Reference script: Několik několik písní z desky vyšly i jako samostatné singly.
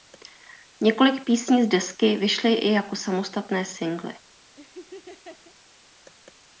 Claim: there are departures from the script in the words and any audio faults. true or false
true